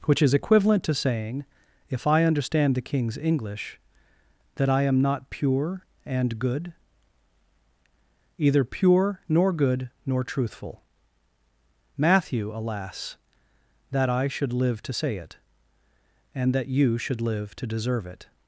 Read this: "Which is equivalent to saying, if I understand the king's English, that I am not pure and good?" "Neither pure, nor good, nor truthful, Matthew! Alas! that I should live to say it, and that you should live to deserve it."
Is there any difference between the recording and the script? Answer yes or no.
yes